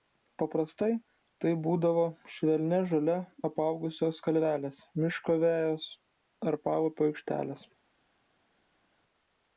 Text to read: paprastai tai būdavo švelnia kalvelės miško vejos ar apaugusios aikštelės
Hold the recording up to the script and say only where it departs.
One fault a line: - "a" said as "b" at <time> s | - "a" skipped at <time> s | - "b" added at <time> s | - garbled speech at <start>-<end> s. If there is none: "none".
- "žole apaugusios" added at 2.9 s
- "apaugusios" said as "paupio" at 6.7 s